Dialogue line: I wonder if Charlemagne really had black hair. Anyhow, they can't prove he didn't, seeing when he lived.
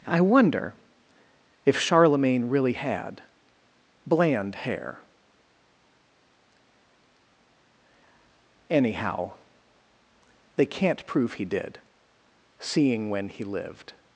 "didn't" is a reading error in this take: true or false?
true